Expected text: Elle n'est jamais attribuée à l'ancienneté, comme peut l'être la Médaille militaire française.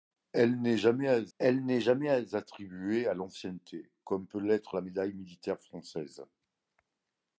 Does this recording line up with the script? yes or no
no